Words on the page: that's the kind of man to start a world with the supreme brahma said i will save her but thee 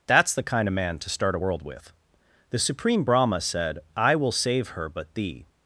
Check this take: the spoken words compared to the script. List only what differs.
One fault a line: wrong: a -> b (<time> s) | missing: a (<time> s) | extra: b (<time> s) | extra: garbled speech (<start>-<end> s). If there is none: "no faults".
no faults